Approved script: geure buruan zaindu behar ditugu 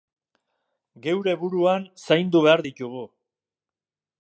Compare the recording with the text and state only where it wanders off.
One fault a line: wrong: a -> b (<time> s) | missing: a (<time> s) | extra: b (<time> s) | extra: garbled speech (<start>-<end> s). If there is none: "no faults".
no faults